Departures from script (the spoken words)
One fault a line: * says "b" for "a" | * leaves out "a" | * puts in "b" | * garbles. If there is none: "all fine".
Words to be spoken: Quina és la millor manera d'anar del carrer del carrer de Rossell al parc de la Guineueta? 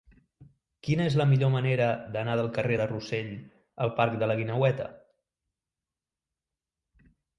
* leaves out "del carrer"